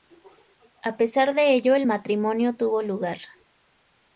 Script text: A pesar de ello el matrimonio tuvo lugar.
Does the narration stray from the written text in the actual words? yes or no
no